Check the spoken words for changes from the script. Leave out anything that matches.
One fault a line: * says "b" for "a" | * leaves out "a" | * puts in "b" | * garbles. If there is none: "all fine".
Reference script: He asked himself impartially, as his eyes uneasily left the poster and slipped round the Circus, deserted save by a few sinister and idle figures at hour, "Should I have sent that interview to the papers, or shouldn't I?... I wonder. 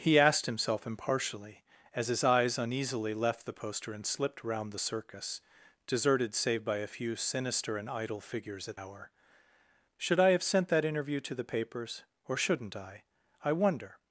all fine